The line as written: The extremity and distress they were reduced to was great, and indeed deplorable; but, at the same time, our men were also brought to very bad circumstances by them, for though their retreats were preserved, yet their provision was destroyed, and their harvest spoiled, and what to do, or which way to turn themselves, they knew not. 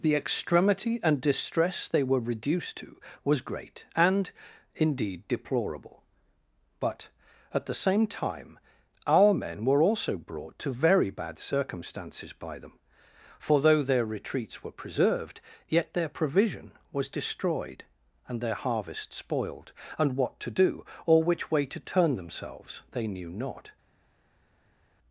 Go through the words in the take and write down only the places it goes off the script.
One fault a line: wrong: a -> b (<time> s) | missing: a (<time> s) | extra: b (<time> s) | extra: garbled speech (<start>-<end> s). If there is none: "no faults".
no faults